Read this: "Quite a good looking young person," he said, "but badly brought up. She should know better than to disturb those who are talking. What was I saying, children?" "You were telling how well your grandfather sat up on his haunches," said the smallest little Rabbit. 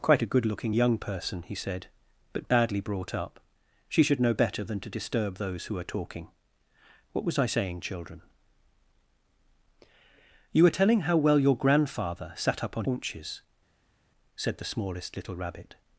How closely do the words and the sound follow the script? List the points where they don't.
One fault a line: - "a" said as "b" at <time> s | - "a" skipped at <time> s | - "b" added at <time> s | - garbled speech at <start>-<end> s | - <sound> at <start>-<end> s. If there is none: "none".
- "his" skipped at 12.9 s